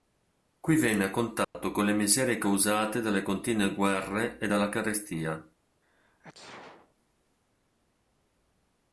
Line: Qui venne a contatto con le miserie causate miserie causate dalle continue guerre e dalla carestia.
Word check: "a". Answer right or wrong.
right